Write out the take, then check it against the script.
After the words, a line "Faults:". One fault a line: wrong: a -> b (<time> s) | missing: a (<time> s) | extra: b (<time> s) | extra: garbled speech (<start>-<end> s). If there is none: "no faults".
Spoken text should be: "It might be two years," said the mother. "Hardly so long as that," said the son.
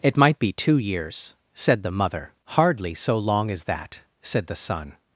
"It might be two years," said the mother. "Hardly so long as that," said the son.
Faults:
no faults